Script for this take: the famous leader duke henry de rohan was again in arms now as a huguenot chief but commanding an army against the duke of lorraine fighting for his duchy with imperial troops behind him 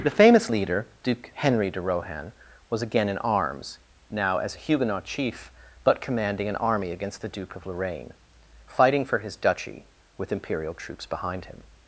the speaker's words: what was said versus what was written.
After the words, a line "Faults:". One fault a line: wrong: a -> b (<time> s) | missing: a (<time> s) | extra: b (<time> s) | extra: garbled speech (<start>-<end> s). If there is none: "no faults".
the famous leader duke henry de rohan was again in arms now as a huguenot chief but commanding an army against the duke of lorraine fighting for his duchy with imperial troops behind him
Faults:
no faults